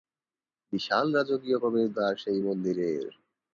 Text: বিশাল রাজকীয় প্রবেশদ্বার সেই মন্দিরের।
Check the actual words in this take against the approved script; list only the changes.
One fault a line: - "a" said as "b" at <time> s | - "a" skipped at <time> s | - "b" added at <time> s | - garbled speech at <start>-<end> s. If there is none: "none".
none